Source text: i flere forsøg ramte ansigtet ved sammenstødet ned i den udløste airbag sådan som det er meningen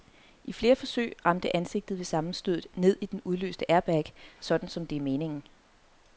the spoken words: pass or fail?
pass